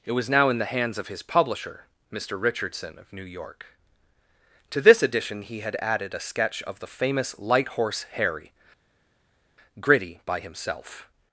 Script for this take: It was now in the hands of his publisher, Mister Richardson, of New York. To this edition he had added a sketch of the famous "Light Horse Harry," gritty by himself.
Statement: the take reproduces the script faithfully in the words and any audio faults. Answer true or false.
true